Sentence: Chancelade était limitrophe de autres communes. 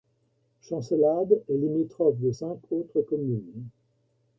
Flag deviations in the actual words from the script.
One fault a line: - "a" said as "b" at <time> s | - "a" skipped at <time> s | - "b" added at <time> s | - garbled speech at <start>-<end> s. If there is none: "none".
- "était" said as "est" at 1.5 s
- "cinq" added at 2.3 s